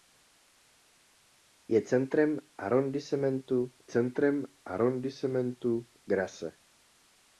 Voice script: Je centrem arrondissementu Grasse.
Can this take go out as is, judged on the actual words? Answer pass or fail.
fail